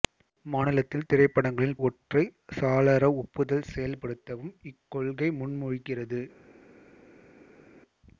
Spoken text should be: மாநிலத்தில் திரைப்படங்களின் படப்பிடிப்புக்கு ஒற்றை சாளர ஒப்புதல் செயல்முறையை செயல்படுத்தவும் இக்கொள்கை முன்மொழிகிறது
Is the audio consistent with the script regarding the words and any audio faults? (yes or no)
no